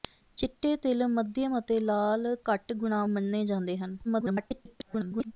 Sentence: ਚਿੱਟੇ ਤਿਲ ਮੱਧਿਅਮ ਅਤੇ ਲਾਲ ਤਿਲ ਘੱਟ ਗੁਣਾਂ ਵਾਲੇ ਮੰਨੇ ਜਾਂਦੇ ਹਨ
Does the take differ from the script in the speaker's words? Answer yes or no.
yes